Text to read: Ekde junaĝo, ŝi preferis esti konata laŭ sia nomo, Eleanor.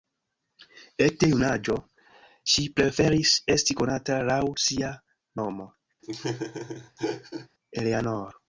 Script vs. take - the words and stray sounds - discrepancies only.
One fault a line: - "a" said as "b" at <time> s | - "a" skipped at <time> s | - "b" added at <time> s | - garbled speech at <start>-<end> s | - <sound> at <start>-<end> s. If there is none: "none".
- laugh at 6.0-7.5 s